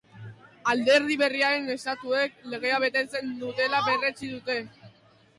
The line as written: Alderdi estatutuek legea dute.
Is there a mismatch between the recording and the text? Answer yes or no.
yes